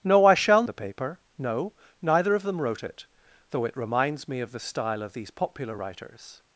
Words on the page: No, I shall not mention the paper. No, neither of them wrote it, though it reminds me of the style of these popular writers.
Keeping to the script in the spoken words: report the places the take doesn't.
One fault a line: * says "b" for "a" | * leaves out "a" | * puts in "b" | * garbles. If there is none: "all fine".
* leaves out "not mention"